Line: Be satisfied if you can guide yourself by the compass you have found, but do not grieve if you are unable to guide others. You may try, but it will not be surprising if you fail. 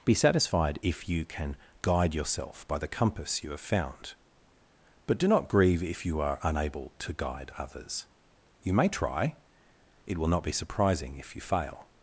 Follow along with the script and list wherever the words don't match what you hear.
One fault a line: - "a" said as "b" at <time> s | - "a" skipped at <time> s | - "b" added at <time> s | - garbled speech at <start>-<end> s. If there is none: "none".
- "but" skipped at 9.3 s